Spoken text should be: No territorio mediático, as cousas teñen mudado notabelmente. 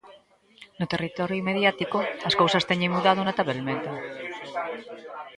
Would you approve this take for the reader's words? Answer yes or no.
yes